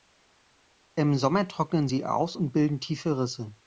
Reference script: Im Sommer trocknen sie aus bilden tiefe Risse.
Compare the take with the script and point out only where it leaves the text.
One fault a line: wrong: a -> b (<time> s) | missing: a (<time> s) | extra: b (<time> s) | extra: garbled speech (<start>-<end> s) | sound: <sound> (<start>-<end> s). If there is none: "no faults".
extra: und (2.3 s)